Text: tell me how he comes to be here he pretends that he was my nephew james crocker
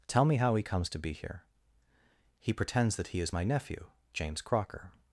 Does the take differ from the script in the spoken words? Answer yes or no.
yes